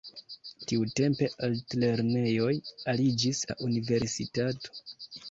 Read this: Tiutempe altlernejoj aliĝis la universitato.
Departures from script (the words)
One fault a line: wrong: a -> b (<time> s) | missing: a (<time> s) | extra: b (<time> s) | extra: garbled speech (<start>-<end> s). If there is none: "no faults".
no faults